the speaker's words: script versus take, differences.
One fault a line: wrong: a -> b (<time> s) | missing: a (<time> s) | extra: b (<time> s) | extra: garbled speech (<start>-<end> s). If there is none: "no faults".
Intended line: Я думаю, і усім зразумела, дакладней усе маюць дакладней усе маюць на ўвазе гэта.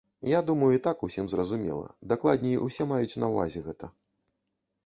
extra: так (0.9 s)
missing: дакладней усе маюць (3.2 s)